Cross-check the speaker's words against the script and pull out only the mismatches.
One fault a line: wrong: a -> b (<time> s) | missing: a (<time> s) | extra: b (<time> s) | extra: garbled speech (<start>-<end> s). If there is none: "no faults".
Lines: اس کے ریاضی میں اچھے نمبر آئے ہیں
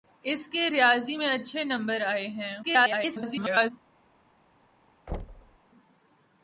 extra: garbled speech (2.6-3.7 s)